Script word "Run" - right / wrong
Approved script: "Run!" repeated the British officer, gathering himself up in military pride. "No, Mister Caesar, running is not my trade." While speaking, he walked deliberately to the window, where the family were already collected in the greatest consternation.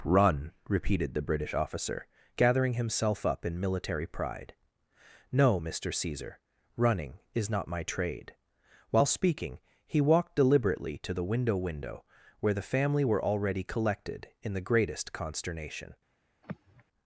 right